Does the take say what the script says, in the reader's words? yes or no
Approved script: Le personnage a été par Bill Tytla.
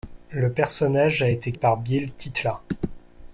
yes